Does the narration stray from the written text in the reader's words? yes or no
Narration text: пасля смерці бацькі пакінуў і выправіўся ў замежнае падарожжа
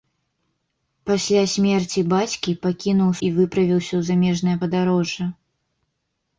no